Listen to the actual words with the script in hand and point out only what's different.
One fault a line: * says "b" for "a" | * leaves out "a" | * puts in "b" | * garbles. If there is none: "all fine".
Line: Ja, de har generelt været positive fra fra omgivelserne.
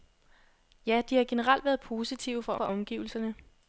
all fine